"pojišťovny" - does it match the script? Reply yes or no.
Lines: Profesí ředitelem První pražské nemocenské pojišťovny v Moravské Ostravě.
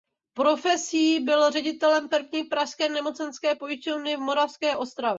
yes